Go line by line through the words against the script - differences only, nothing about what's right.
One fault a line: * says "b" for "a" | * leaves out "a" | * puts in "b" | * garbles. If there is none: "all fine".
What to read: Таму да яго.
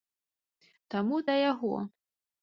all fine